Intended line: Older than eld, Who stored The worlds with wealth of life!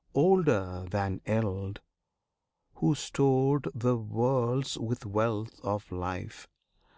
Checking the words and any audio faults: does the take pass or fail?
pass